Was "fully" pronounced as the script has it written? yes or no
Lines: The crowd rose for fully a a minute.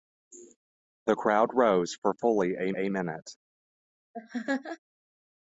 yes